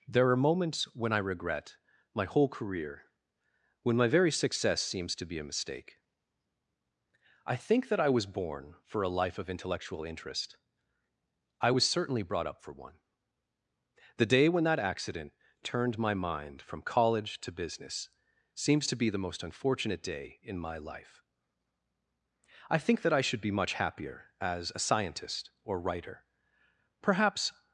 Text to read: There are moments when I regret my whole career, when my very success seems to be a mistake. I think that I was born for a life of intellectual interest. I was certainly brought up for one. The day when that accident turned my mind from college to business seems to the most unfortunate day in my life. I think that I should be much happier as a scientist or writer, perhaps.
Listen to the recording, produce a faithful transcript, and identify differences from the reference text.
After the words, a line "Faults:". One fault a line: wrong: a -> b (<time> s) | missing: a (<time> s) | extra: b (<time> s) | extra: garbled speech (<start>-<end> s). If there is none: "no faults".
There are moments when I regret my whole career, when my very success seems to be a mistake. I think that I was born for a life of intellectual interest. I was certainly brought up for one. The day when that accident turned my mind from college to business seems to be the most unfortunate day in my life. I think that I should be much happier as a scientist or writer, perhaps.
Faults:
extra: be (18.9 s)